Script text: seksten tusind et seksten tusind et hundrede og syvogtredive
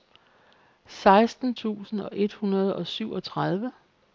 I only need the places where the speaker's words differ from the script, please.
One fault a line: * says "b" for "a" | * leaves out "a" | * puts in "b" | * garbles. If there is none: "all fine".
* leaves out "seksten tusind et"